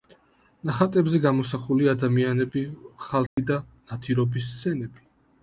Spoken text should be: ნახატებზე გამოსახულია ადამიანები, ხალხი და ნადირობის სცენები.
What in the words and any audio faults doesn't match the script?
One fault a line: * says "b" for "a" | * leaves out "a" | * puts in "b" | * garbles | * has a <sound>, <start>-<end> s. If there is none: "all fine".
* has a dropout, 3.3-3.4 s